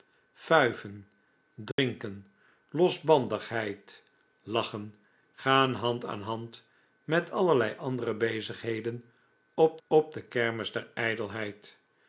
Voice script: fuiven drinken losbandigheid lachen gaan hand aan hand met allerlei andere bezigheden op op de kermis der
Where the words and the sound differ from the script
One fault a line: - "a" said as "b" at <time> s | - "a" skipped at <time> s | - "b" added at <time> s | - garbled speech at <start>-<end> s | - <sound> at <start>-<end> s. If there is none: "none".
- dropout at 1.7-1.8 s